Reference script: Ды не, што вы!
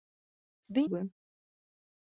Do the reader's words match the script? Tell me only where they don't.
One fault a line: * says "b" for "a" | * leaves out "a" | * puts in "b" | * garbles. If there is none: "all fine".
* leaves out "не што"